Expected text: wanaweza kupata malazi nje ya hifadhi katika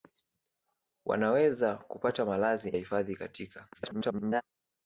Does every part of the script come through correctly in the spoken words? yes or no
no